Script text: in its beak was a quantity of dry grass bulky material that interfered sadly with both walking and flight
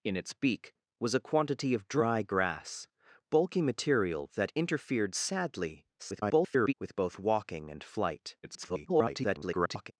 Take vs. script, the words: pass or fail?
fail